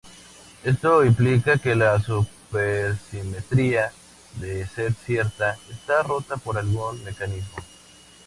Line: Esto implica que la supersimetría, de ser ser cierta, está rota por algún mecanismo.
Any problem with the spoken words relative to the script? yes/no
yes